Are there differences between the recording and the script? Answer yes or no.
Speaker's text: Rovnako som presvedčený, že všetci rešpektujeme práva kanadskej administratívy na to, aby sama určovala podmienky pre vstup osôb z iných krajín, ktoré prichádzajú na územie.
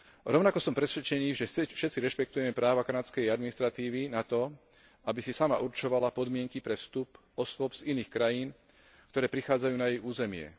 yes